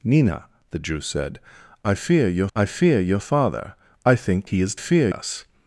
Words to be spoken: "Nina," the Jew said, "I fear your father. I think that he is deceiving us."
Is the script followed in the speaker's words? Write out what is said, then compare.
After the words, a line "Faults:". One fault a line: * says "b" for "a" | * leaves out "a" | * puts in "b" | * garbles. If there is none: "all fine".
"Nina," the Jew said, "I fear your I fear your father. I think he is fear us."
Faults:
* puts in "I fear your"
* leaves out "that"
* says "fear" for "deceiving"